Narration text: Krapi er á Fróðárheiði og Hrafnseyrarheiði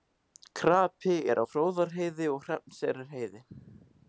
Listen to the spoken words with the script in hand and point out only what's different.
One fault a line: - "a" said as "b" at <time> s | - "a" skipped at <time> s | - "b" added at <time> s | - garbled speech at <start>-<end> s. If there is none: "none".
none